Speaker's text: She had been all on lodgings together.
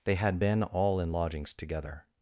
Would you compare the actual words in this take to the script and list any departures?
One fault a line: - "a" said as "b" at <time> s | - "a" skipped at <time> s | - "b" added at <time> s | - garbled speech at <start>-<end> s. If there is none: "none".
- "She" said as "They" at 0.0 s
- "on" said as "in" at 1.0 s